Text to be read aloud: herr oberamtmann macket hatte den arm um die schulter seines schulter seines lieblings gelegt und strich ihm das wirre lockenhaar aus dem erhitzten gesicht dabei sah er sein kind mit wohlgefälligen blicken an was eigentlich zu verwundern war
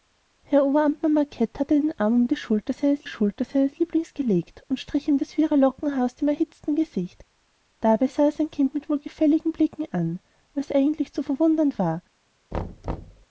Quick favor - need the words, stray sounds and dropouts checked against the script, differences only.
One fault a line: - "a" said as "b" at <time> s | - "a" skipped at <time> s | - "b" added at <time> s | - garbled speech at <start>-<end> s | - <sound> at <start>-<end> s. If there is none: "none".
- thud at 12.5-13.3 s